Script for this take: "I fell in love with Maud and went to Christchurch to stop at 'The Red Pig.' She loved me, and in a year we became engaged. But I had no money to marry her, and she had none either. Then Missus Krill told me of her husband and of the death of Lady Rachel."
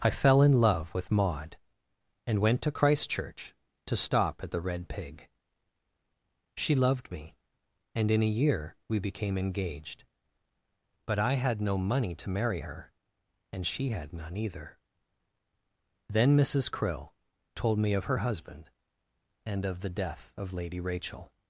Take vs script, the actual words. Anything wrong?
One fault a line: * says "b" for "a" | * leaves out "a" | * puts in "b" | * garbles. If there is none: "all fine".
all fine